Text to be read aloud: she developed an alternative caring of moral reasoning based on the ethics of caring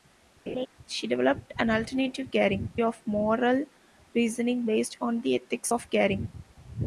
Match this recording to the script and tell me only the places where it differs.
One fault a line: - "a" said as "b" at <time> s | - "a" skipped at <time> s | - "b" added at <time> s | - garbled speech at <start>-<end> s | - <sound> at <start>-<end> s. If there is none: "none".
- laugh at 0.5-0.7 s